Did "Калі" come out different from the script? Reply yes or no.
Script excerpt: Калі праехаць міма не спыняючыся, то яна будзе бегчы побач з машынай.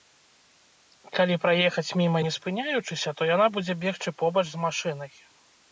no